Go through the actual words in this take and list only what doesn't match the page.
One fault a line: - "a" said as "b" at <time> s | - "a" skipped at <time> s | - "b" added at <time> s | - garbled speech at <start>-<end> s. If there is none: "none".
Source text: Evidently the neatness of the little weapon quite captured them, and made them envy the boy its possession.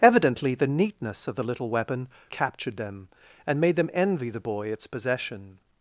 - "quite" skipped at 2.1 s